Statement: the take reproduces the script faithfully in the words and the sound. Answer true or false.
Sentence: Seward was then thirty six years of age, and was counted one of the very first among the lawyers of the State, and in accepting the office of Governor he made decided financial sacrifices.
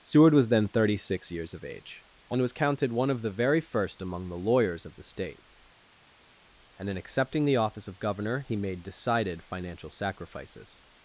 true